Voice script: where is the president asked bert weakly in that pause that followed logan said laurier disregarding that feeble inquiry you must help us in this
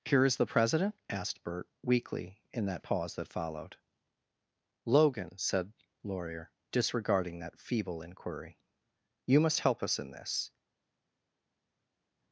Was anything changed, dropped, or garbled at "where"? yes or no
yes